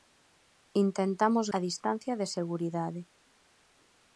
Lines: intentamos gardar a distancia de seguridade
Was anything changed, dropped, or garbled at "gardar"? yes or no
yes